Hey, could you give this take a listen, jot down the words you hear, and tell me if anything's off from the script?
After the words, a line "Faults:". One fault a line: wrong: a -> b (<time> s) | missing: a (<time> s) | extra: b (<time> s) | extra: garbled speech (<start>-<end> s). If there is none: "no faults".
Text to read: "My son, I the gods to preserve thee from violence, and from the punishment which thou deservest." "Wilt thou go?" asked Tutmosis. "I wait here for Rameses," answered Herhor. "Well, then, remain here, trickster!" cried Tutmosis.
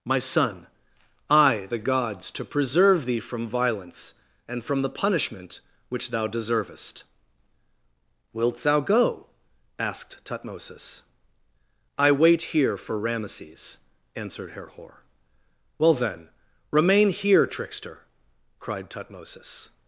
"My son, I the gods to preserve thee from violence, and from the punishment which thou deservest." "Wilt thou go?" asked Tutmosis. "I wait here for Rameses," answered Herhor. "Well, then, remain here, trickster!" cried Tutmosis.
Faults:
no faults